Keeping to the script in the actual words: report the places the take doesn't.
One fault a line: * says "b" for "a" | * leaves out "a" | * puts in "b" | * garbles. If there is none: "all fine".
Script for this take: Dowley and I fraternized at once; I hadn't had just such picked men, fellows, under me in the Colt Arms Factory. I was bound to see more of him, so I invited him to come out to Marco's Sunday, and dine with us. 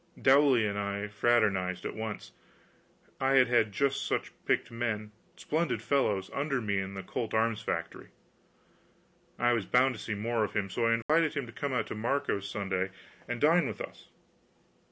* says "had" for "hadn't"
* puts in "splendid"